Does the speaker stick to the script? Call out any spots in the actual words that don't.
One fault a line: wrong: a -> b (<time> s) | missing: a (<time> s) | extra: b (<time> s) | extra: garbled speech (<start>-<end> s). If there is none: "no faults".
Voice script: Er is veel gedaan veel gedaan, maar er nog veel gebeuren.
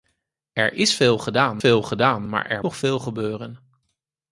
no faults